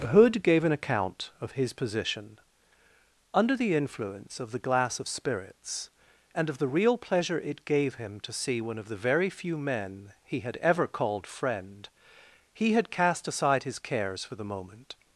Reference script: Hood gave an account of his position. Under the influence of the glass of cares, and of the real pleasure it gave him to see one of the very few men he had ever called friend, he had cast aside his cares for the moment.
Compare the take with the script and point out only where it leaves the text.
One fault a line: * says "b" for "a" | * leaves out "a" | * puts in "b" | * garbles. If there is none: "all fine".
* says "spirits" for "cares"